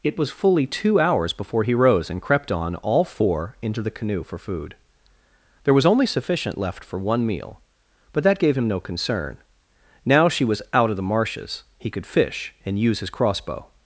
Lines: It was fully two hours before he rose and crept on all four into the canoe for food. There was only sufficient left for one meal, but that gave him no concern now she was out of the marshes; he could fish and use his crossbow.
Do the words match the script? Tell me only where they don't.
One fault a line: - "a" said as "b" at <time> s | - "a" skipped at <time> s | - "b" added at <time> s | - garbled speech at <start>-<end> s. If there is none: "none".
none